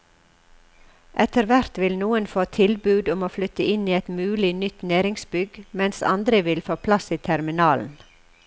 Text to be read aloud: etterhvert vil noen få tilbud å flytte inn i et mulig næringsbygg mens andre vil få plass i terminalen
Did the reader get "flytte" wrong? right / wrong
right